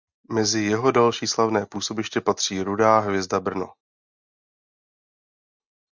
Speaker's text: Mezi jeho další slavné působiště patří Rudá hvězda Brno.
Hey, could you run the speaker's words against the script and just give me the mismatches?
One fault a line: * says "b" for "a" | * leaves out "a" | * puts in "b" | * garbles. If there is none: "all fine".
all fine